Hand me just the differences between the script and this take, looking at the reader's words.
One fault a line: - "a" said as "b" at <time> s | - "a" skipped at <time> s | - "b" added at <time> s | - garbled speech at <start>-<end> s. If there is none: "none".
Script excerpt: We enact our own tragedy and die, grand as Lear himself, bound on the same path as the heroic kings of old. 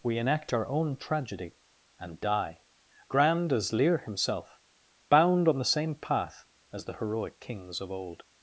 none